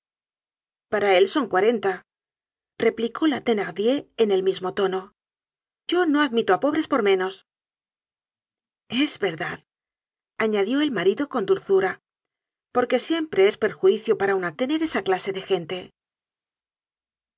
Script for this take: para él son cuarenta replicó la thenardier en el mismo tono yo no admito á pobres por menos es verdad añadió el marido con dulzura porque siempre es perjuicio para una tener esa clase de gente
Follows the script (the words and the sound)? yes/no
yes